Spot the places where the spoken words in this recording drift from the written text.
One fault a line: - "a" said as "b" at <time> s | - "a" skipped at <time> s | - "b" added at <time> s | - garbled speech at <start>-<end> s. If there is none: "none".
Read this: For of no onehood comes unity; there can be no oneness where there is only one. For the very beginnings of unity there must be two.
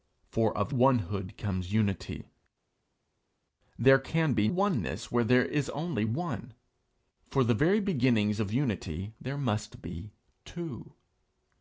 - "no" skipped at 0.7 s
- "no" skipped at 4.5 s